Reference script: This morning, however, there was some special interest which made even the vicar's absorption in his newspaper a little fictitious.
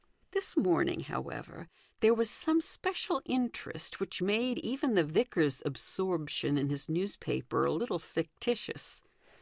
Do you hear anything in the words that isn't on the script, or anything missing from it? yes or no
no